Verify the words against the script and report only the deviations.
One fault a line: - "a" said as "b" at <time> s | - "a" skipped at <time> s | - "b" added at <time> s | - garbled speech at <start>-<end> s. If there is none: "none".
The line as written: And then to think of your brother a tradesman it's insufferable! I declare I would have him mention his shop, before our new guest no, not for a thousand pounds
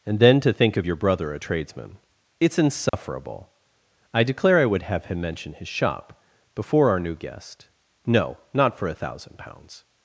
none